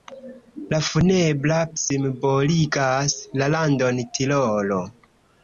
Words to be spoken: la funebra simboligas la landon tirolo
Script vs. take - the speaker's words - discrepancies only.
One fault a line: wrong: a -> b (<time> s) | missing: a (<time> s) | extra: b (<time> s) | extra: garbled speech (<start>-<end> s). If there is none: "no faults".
no faults